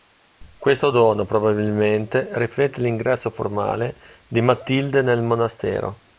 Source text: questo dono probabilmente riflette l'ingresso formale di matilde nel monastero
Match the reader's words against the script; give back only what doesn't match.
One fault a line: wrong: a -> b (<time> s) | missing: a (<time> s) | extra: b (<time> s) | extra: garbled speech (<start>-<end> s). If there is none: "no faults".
no faults